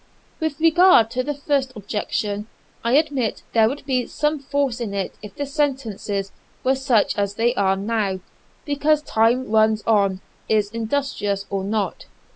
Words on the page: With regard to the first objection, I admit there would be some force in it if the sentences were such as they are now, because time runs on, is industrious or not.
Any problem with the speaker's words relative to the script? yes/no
no